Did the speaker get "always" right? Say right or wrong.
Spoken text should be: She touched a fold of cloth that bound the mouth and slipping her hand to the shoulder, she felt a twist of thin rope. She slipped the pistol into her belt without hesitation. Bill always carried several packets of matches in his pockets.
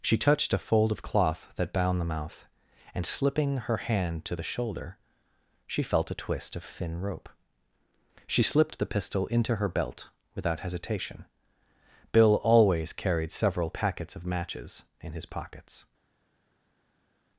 right